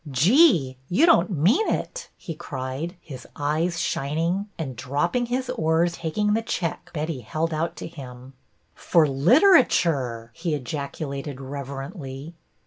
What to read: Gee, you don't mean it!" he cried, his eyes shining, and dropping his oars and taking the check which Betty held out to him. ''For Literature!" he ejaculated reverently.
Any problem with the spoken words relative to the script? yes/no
yes